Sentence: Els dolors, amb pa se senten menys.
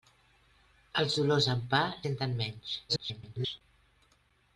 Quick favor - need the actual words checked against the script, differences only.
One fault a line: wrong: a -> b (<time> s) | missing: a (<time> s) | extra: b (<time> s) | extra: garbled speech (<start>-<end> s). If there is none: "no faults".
missing: se (1.8 s)
extra: garbled speech (2.9-3.6 s)